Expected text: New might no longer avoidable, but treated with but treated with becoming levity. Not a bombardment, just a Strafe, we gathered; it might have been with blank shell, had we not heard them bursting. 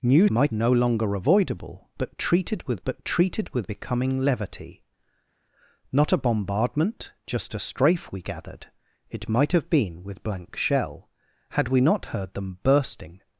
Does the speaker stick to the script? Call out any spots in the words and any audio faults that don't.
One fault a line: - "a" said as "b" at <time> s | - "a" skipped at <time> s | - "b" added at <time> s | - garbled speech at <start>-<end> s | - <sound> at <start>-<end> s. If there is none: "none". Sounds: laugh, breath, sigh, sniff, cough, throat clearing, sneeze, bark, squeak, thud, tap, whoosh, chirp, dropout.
none